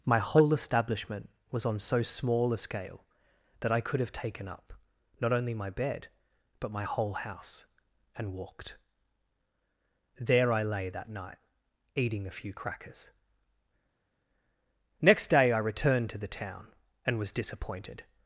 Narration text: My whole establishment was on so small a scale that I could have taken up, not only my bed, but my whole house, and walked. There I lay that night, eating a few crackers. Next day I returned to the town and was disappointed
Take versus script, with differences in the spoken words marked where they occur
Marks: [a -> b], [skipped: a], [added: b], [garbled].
My whole establishment was on so small a scale that I could have taken up, not only my bed, but my whole house, and walked. There I lay that night, eating a few crackers. Next day I returned to the town and was disappointed